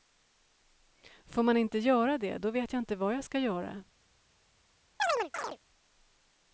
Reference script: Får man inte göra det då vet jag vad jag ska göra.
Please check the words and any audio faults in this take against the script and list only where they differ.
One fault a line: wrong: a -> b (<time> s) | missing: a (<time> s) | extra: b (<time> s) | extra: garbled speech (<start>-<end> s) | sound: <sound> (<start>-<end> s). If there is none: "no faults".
extra: inte (2.8 s)
sound: chirp (5.0-5.6 s)